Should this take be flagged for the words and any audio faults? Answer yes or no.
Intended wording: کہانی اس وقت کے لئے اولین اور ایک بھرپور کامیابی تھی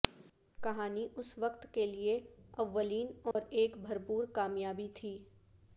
yes